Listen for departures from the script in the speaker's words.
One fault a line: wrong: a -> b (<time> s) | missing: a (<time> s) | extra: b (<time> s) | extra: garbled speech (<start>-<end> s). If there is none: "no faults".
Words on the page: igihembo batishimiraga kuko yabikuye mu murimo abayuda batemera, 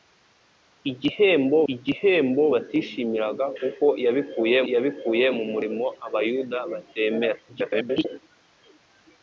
extra: igihembo (1.7 s)
extra: yabikuye (4.7 s)
extra: garbled speech (7.5-8.2 s)